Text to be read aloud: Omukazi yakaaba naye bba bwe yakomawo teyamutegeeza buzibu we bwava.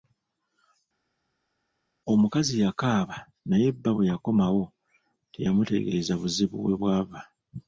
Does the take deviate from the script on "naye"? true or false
false